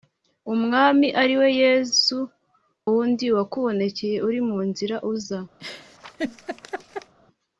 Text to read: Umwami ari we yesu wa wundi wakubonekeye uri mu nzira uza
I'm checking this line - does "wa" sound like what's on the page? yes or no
no